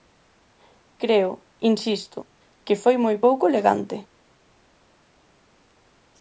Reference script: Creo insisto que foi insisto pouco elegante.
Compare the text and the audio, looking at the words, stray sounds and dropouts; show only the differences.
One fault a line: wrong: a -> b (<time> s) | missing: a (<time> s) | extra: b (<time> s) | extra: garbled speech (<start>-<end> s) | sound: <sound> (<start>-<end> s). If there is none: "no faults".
wrong: insisto -> moi (3.0 s)